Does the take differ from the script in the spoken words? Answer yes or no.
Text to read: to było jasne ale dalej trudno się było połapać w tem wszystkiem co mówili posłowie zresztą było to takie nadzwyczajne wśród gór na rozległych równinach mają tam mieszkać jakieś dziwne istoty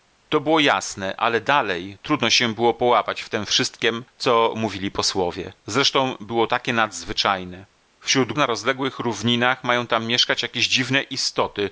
yes